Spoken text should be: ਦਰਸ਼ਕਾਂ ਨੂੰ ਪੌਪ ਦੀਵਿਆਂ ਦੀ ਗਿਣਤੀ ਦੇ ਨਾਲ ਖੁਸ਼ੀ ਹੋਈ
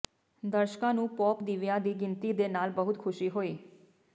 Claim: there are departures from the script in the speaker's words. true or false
true